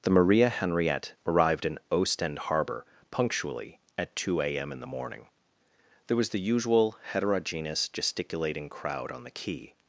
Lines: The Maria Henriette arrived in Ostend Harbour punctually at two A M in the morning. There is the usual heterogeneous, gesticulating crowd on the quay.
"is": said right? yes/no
no